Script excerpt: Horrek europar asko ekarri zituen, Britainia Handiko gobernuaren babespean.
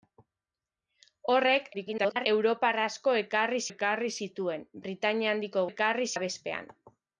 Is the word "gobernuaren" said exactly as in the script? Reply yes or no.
no